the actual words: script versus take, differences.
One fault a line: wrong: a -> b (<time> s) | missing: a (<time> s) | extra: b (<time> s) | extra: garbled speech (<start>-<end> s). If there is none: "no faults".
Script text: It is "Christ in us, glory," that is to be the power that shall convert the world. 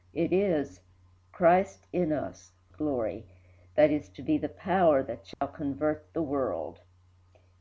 no faults